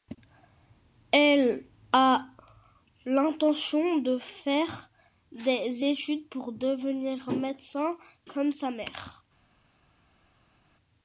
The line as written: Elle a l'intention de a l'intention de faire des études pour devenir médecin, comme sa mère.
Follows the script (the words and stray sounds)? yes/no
no